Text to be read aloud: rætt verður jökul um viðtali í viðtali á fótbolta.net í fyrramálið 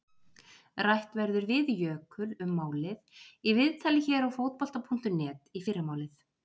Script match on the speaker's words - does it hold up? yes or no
no